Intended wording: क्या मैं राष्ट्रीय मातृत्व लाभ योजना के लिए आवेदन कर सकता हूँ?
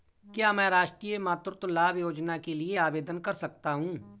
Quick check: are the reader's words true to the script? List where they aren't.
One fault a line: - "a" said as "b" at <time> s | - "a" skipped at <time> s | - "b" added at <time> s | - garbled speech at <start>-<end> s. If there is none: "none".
none